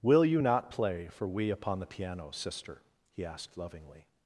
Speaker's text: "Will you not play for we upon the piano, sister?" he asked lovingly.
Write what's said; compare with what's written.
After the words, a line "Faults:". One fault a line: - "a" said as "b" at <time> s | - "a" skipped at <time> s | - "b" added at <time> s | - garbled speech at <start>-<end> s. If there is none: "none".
"Will you not play for we upon the piano, sister?" he asked lovingly.
Faults:
none